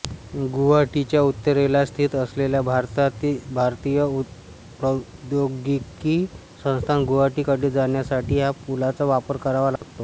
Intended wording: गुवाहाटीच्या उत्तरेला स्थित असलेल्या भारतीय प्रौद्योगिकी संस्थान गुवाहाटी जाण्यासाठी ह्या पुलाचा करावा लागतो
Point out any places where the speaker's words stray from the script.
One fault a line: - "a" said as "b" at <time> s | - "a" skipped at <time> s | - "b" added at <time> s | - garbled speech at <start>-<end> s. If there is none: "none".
- "कडे" added at 7.4 s
- "वापर" added at 9.1 s